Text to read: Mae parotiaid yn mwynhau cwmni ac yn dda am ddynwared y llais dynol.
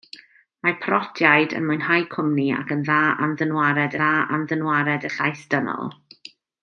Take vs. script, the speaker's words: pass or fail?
fail